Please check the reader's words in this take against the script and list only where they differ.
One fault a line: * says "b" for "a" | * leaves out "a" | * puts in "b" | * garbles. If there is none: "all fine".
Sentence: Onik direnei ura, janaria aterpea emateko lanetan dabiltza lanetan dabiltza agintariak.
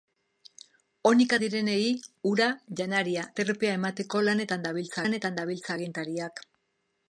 all fine